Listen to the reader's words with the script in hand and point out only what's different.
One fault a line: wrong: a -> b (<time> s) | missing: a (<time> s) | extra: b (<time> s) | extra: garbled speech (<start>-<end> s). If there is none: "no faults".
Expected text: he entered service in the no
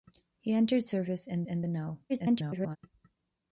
extra: in (1.5 s)
extra: garbled speech (2.1-2.8 s)